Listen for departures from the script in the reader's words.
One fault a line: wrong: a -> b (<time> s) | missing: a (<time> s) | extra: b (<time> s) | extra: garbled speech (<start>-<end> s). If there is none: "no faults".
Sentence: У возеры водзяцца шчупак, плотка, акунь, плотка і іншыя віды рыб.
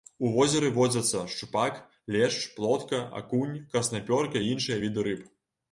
extra: лешч (2.1 s)
wrong: плотка -> краснапёрка (3.7 s)